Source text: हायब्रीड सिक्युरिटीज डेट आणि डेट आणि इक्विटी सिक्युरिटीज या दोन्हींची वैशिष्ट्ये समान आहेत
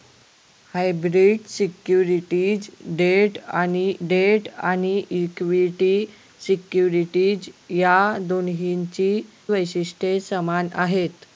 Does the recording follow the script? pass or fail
pass